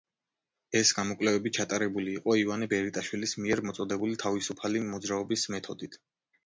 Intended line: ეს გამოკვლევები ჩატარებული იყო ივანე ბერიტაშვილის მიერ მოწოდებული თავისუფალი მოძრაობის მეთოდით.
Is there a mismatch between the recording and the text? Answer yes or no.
no